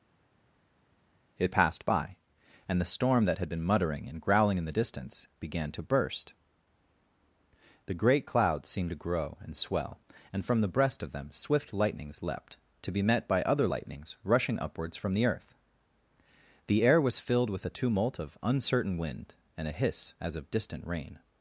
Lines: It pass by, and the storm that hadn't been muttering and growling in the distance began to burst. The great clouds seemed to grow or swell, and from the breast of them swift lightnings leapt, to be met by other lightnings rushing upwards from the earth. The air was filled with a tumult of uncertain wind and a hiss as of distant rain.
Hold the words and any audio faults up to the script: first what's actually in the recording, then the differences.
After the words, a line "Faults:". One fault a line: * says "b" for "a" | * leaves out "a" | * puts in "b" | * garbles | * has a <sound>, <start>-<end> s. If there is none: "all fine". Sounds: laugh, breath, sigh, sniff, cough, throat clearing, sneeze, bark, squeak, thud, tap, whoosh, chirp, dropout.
It passed by, and the storm that had been muttering and growling in the distance began to burst. The great clouds seemed to grow and swell, and from the breast of them swift lightnings leapt, to be met by other lightnings rushing upwards from the earth. The air was filled with a tumult of uncertain wind and a hiss as of distant rain.
Faults:
* says "passed" for "pass"
* says "had" for "hadn't"
* says "and" for "or"